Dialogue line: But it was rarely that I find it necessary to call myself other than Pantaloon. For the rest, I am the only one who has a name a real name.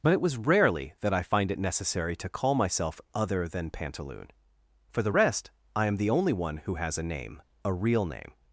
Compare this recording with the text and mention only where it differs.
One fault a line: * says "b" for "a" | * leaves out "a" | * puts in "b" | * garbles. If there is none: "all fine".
all fine